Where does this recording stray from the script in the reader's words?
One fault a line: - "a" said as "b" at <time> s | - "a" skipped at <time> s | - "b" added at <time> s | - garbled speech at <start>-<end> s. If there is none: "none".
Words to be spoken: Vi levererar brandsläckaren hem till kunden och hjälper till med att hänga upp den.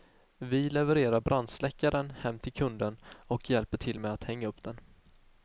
none